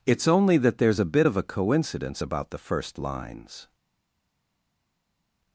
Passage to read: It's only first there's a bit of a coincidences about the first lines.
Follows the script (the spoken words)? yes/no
no